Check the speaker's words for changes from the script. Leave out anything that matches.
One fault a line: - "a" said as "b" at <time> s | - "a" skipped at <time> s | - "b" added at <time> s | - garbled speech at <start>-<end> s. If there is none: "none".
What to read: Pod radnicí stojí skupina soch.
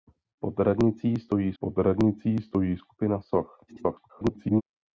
- "pod radnicí stojí" added at 1.6 s
- garbled speech at 3.7-4.6 s